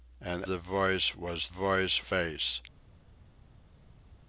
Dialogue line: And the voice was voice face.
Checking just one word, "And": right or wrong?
right